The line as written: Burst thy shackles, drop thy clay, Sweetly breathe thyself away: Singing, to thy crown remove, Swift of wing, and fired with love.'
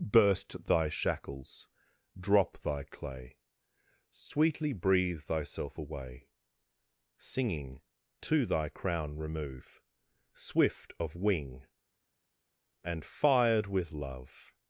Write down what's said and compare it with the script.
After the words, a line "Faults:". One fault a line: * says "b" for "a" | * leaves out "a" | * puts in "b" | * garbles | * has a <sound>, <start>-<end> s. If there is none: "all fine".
Burst thy shackles, drop thy clay, Sweetly breathe thyself away: Singing, to thy crown remove, Swift of wing, and fired with love.'
Faults:
all fine